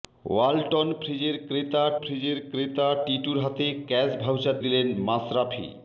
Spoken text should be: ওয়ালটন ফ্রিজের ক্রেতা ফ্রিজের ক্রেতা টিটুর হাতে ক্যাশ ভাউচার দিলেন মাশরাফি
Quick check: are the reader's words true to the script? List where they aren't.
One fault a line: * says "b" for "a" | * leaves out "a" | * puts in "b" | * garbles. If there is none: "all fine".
all fine